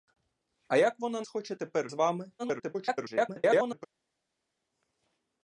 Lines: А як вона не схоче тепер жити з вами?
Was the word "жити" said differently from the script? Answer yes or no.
yes